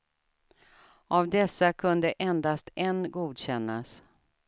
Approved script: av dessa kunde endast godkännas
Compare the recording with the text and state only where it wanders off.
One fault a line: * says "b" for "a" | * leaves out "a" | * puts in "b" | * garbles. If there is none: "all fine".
* puts in "en"